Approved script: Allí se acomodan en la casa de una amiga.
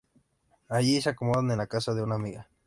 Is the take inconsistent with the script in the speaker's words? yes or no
no